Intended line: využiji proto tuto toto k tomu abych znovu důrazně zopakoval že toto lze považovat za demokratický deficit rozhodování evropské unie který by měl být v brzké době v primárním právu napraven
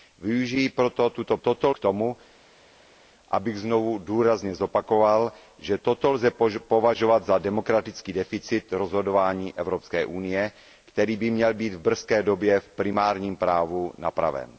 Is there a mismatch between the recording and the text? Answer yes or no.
no